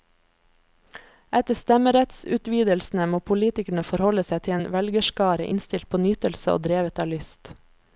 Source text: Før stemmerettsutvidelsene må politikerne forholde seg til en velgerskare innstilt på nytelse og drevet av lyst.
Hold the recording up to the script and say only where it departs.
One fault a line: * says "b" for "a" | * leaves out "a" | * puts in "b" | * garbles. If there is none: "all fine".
* says "Etter" for "Før"